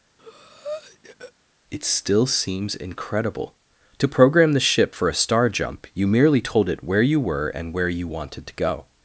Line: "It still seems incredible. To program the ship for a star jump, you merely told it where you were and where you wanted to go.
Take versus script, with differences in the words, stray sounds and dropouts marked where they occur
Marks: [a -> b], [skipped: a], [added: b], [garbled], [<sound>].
[breath] "It still seems incredible. To program the ship for a star jump, you merely told it where you were and where you wanted to go.